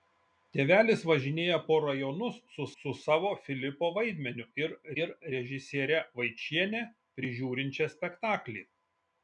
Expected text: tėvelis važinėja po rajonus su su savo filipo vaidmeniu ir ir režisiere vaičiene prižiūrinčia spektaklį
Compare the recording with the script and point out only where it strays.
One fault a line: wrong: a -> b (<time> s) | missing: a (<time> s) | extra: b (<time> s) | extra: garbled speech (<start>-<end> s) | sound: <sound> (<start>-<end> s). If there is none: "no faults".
no faults